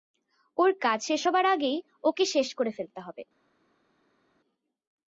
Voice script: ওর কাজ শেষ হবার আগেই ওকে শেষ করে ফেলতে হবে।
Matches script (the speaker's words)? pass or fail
pass